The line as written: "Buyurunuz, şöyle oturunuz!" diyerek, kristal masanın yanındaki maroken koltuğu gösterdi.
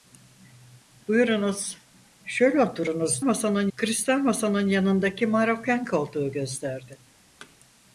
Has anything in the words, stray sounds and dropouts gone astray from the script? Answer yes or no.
yes